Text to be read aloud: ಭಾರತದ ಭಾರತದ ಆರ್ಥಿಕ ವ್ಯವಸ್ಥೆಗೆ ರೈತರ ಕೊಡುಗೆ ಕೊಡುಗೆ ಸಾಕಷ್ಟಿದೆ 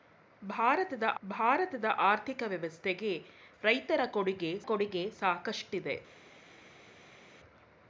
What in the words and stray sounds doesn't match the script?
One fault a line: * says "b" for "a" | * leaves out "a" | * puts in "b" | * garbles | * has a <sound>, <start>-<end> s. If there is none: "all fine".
all fine